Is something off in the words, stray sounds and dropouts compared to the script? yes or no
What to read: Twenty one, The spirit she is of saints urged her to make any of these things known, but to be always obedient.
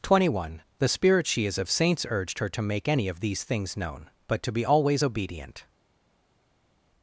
no